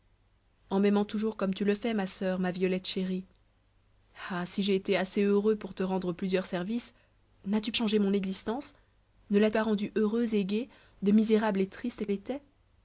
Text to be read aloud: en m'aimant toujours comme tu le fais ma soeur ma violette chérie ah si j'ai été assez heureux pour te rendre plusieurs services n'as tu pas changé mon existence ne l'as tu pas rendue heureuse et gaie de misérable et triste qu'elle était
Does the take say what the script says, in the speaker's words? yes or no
no